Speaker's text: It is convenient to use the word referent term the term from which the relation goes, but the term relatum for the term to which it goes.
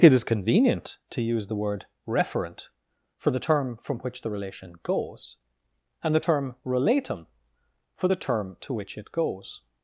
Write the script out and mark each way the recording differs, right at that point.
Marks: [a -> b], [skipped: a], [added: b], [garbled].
It is convenient to use the word referent [term -> for] the term from which the relation goes, [but -> and] the term relatum for the term to which it goes.